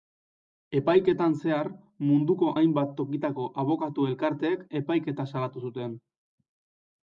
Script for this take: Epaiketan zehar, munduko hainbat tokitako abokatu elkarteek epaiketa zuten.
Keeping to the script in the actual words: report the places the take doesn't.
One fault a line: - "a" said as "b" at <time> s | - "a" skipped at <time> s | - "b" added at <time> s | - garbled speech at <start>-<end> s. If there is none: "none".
- "salatu" added at 5.3 s